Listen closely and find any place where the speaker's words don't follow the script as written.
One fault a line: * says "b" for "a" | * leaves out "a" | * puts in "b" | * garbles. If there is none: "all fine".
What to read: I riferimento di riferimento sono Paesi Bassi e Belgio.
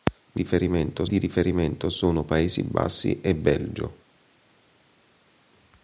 all fine